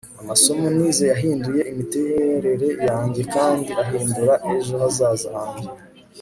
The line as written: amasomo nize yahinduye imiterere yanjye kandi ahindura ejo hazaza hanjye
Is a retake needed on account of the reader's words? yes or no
no